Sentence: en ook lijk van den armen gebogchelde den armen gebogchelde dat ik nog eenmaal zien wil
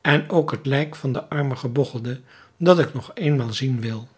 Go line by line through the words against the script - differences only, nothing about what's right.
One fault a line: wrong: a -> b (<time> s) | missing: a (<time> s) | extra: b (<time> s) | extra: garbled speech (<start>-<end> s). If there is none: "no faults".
extra: het (0.5 s)
missing: den armen gebogchelde (2.2 s)